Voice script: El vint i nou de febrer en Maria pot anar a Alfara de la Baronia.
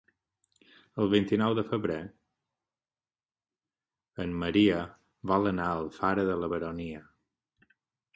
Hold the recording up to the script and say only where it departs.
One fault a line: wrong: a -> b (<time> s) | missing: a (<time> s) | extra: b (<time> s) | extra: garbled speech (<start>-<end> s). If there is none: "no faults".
wrong: pot -> vol (5.3 s)